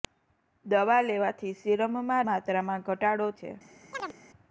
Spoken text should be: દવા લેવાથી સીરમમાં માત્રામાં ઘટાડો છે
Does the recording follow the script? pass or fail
pass